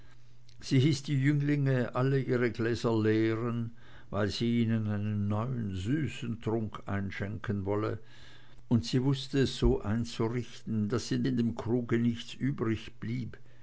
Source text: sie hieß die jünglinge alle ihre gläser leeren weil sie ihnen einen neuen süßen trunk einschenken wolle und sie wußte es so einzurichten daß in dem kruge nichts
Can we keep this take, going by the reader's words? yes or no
no